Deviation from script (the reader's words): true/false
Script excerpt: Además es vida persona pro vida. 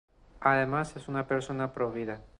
true